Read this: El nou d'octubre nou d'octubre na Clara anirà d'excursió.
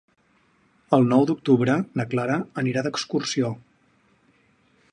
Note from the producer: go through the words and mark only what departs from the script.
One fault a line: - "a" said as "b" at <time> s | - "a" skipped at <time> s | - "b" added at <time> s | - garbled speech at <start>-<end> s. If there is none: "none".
- "nou d'octubre" skipped at 1.8 s